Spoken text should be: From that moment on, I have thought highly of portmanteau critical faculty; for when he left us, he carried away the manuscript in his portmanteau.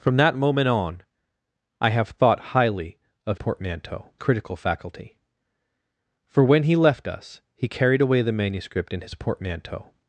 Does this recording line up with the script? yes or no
yes